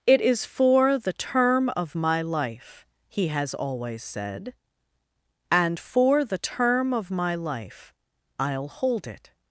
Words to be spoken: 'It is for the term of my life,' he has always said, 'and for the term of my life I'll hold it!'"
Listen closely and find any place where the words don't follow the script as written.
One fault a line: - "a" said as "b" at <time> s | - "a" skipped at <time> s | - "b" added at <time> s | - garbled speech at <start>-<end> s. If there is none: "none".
none